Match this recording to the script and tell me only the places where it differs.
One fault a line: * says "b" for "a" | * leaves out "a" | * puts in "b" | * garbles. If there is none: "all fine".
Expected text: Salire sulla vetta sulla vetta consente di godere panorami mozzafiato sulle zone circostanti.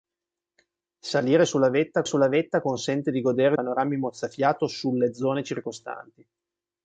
all fine